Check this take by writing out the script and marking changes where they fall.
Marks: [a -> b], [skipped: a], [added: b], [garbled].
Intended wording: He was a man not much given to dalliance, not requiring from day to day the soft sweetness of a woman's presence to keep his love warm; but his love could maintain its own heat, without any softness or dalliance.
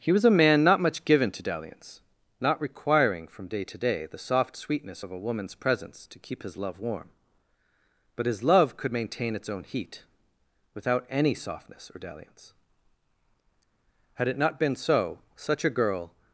He was a man not much given to dalliance, not requiring from day to day the soft sweetness of a woman's presence to keep his love warm; but his love could maintain its own heat, without any softness or dalliance. [added: Had it not been so such a girl]